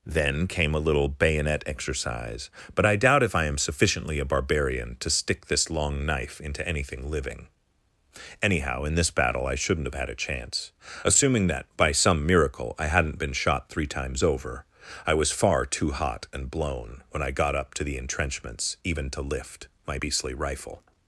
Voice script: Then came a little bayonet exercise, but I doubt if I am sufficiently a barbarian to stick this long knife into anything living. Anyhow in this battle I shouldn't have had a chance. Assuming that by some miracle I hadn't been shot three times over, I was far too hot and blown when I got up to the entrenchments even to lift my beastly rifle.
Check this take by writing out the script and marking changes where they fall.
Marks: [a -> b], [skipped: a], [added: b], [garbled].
Then came a little bayonet exercise, but I doubt if I am sufficiently a barbarian to stick this long knife into anything living. Anyhow in this battle I shouldn't have had a chance. Assuming that by some miracle I hadn't been shot three times over, I was far too hot and blown when I got up to the entrenchments even to lift my beastly rifle.